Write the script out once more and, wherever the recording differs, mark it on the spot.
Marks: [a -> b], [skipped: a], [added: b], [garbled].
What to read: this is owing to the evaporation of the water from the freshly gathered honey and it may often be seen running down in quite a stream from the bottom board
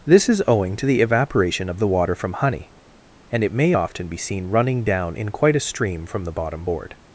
this is owing to the evaporation of the water from [skipped: the freshly gathered] honey and it may often be seen running down in quite a stream from the bottom board